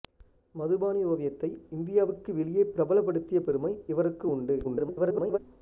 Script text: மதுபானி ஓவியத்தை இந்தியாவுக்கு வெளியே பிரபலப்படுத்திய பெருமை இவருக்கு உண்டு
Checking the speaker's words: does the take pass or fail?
fail